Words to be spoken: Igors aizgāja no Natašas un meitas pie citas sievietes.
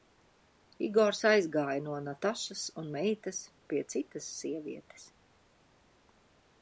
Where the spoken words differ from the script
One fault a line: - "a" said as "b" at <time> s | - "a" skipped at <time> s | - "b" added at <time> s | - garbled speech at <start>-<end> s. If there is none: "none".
none